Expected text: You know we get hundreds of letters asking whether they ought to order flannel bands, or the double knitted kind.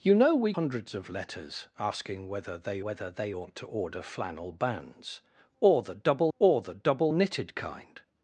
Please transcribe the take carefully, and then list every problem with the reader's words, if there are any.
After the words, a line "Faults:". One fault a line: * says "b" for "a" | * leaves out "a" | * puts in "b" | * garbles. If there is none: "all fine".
You know we hundreds of letters asking whether they whether they ought to order flannel bands, or the double or the double knitted kind.
Faults:
* leaves out "get"
* puts in "whether they"
* puts in "or the double"